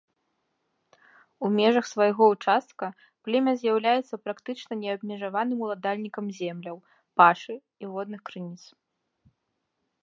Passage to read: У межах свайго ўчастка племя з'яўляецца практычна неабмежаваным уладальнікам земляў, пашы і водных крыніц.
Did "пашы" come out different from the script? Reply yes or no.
no